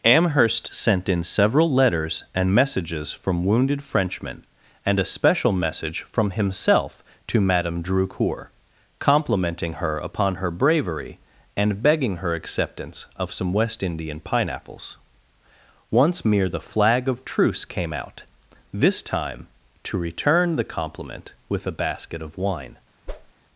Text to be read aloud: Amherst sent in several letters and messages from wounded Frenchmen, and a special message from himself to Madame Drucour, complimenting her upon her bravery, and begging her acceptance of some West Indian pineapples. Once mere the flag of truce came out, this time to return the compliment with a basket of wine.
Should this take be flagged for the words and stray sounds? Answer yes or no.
yes